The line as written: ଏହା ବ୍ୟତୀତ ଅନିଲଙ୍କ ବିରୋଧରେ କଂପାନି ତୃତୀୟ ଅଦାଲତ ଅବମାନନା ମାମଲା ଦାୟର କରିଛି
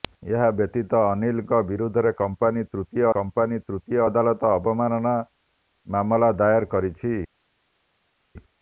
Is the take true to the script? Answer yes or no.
no